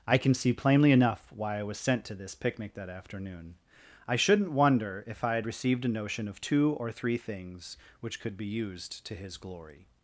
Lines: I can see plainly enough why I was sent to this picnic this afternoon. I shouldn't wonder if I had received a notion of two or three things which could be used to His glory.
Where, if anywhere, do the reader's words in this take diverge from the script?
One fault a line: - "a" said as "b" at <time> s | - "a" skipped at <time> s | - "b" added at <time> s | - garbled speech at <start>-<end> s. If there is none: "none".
- "this" said as "that" at 2.7 s